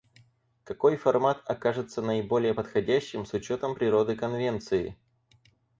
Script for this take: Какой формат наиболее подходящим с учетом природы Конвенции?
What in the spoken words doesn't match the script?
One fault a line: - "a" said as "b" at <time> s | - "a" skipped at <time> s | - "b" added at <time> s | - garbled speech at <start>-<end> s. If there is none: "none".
- "окажется" added at 1.4 s